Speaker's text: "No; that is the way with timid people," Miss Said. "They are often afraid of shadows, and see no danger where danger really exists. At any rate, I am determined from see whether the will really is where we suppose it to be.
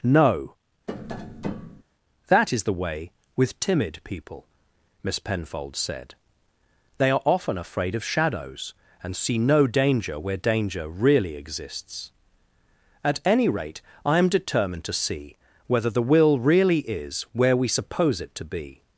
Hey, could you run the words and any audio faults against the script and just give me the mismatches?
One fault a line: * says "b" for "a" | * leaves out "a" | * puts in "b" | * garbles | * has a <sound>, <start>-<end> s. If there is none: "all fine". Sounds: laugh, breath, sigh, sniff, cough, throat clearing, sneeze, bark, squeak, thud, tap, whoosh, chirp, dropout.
* has a tap, 0.9-1.8 s
* puts in "Penfold"
* says "to" for "from"